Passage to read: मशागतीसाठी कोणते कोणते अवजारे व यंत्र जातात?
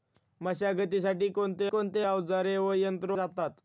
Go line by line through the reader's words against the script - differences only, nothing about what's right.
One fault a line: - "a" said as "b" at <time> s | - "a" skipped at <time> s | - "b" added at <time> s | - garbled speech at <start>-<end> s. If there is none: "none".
none